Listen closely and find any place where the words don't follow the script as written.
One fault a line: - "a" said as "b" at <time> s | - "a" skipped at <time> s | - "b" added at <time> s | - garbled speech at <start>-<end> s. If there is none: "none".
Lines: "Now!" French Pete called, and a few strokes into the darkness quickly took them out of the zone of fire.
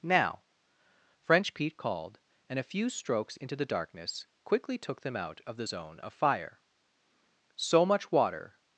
- "So much water" added at 7.6 s